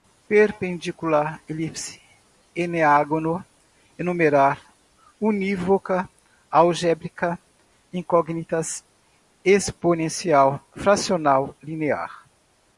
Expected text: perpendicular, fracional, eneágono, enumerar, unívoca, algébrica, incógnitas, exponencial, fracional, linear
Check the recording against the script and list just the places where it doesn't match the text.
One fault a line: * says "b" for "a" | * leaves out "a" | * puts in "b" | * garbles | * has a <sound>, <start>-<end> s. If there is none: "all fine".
* says "elipse" for "fracional"